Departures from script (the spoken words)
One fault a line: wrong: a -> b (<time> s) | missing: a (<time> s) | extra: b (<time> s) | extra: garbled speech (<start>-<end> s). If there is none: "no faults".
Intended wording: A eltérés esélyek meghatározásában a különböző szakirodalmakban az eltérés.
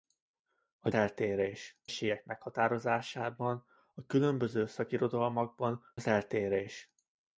no faults